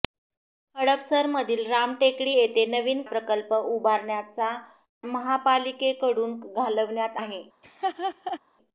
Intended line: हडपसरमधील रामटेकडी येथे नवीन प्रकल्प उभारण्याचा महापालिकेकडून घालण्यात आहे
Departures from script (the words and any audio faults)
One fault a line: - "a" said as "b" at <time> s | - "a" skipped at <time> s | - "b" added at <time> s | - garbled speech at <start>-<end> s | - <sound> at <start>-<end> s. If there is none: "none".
- laugh at 7.6-8.4 s